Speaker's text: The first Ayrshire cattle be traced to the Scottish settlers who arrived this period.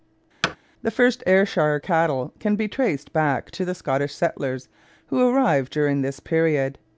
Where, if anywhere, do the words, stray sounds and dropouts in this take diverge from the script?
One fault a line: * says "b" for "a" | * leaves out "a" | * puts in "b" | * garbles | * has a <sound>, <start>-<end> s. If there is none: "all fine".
* has a thud, 0.4-0.6 s
* puts in "can"
* puts in "back"
* puts in "during"